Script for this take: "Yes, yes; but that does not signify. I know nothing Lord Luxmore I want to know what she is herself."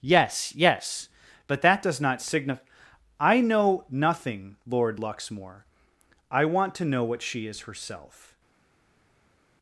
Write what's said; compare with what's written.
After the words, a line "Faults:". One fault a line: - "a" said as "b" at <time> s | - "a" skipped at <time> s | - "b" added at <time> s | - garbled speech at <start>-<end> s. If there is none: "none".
"Yes, yes; but that does not signify. I know nothing Lord Luxmore I want to know what she is herself."
Faults:
none